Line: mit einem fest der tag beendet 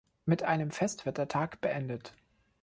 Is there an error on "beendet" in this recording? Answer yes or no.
no